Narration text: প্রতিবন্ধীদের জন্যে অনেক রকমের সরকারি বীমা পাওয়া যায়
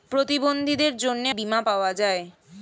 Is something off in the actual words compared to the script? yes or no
yes